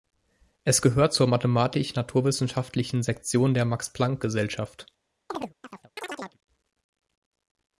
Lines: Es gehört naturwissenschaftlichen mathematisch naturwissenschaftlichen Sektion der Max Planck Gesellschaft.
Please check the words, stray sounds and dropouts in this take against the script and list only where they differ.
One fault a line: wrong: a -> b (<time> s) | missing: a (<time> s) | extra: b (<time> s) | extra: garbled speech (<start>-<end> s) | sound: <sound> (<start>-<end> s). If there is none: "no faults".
wrong: naturwissenschaftlichen -> zur (1.1 s)
sound: chirp (5.3-6.4 s)